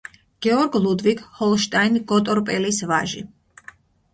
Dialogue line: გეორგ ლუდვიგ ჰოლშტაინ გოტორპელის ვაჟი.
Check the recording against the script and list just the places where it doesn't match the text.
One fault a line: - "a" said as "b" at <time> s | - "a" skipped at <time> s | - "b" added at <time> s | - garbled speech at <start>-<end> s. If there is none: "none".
none